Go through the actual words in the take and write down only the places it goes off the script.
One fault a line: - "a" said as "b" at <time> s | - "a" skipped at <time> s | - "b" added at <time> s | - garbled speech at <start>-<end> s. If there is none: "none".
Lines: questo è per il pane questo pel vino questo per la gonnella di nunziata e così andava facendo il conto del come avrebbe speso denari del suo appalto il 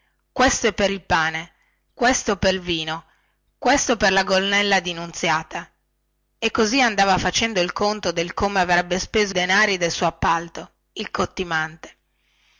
none